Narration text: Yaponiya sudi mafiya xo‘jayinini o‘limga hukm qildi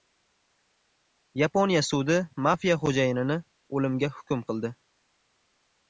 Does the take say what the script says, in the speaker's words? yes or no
yes